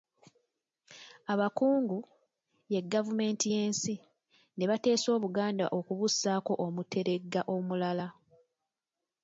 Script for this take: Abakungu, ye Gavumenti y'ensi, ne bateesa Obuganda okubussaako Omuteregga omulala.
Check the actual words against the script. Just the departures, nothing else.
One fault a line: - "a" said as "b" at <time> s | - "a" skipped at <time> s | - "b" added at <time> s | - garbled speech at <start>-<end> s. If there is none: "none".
none